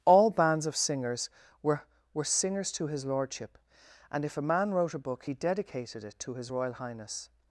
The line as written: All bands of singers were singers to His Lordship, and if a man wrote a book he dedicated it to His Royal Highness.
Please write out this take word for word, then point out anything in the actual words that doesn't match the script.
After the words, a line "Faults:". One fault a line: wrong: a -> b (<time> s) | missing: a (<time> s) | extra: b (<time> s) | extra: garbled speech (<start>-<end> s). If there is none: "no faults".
All bands of singers were were singers to His Lordship, and if a man wrote a book he dedicated it to His Royal Highness.
Faults:
extra: were (2.1 s)